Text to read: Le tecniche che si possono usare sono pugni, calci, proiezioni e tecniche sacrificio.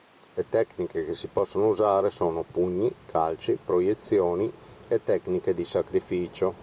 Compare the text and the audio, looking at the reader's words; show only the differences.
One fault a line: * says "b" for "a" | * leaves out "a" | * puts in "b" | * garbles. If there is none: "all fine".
* puts in "di"